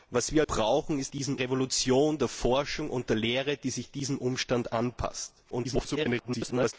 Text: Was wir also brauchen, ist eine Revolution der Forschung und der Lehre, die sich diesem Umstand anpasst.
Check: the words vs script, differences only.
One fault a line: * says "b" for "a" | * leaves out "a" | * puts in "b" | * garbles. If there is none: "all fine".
* leaves out "also"
* says "diesem" for "eine"
* garbles